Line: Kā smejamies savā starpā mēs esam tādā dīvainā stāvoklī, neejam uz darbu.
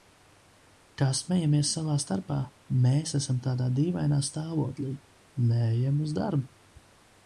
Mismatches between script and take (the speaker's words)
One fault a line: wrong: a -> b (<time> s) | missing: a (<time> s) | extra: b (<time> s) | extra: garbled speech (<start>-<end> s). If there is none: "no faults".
no faults